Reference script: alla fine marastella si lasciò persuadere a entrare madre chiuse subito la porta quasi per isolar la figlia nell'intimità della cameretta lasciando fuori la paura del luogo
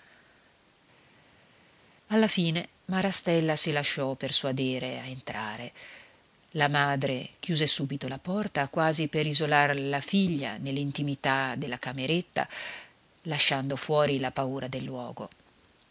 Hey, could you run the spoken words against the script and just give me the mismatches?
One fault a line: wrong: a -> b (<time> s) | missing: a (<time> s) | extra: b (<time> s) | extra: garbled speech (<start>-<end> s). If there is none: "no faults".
extra: la (6.5 s)